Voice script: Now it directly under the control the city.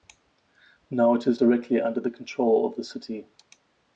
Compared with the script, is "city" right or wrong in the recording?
right